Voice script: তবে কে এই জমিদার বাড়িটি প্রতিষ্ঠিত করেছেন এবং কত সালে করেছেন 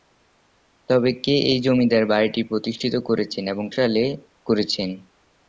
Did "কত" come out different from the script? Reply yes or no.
yes